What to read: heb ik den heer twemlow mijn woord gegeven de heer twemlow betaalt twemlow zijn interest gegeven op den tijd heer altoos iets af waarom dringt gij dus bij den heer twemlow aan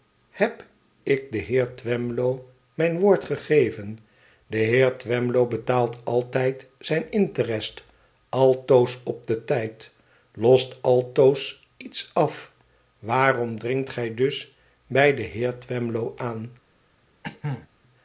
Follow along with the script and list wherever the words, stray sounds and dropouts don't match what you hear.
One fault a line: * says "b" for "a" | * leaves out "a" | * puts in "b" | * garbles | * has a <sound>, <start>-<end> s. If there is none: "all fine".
* says "altijd" for "twemlow"
* says "altoos" for "gegeven"
* says "lost" for "heer"
* has a cough, 17.2-17.7 s